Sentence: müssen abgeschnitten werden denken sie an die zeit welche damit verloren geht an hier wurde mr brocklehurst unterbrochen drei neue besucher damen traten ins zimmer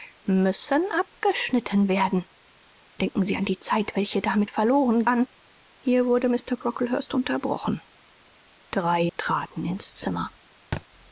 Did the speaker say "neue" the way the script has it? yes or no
no